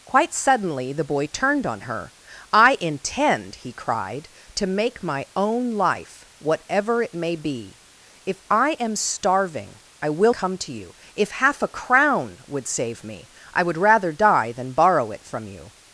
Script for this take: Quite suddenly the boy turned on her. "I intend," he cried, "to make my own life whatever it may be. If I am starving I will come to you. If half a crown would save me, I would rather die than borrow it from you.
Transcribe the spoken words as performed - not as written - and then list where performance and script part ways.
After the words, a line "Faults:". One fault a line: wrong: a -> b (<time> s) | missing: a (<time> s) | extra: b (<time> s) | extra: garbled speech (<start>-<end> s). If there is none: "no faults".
Quite suddenly the boy turned on her. "I intend," he cried, "to make my own life whatever it may be. If I am starving I will come to you. If half a crown would save me, I would rather die than borrow it from you.
Faults:
no faults